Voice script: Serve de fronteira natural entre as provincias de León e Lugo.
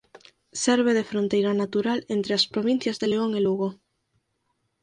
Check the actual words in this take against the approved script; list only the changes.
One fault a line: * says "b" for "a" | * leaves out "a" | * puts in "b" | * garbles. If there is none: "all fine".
all fine